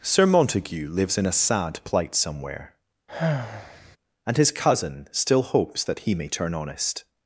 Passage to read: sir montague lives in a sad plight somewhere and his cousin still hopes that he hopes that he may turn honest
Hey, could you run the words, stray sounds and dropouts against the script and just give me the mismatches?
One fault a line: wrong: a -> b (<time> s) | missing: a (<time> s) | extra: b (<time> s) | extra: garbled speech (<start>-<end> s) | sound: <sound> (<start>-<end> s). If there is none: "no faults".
sound: sigh (3.1-4.0 s)
missing: hopes that he (6.1 s)